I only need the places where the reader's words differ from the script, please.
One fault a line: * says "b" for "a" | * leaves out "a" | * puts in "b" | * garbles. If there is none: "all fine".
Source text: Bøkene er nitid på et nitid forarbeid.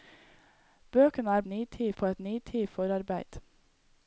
all fine